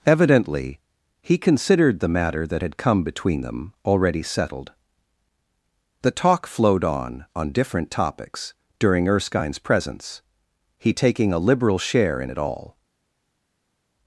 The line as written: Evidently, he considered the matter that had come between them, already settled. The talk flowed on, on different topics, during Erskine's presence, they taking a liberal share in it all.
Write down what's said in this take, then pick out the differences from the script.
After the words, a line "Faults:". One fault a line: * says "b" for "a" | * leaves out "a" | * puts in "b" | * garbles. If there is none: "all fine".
Evidently, he considered the matter that had come between them, already settled. The talk flowed on, on different topics, during Erskine's presence, he taking a liberal share in it all.
Faults:
* says "he" for "they"